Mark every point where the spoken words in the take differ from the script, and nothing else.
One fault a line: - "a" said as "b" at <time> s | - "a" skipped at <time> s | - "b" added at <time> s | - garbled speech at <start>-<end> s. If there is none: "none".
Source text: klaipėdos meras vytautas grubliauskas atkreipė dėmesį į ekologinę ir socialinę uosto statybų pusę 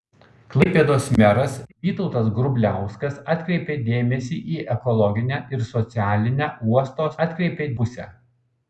- "statybų" said as "atkreipė" at 7.3 s